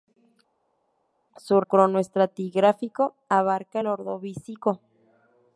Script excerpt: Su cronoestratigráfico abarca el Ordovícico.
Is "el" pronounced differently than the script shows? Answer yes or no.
no